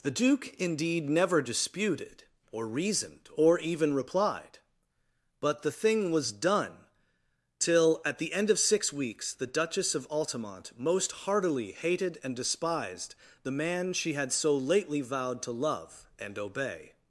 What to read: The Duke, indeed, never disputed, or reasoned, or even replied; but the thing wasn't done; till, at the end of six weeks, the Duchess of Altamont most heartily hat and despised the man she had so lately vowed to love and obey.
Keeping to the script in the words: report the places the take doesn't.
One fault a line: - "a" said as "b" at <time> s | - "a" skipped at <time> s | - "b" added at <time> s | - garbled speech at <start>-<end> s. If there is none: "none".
- "wasn't" said as "was" at 6.1 s
- "hat" said as "hated" at 11.7 s